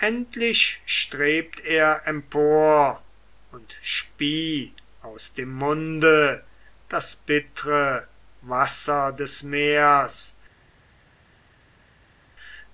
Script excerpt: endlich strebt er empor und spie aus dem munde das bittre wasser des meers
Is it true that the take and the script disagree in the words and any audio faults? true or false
false